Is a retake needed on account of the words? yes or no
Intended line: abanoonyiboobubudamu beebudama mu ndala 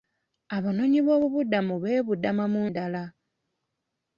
no